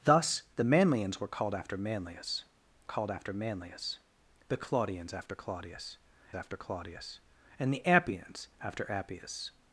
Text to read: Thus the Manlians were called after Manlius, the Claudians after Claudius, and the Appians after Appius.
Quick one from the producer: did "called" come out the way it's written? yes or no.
yes